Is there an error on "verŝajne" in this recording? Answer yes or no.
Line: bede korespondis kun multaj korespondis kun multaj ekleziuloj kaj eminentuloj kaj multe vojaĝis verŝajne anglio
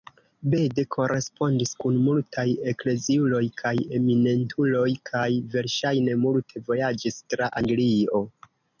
yes